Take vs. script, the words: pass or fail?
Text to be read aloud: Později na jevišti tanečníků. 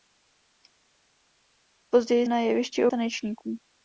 pass